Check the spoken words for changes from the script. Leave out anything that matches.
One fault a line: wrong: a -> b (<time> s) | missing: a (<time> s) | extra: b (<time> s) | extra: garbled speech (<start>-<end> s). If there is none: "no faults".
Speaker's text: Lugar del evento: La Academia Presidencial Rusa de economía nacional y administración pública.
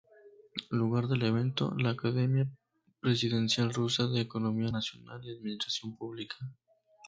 no faults